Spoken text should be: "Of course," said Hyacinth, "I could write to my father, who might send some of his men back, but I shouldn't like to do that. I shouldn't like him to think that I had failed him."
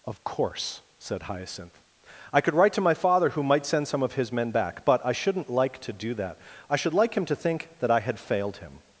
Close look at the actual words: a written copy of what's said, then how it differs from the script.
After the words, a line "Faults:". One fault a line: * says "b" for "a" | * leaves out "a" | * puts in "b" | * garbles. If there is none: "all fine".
"Of course," said Hyacinth, "I could write to my father, who might send some of his men back, but I shouldn't like to do that. I should like him to think that I had failed him."
Faults:
* says "should" for "shouldn't"